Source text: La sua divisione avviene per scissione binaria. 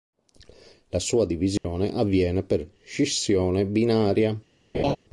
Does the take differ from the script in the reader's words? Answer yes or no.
no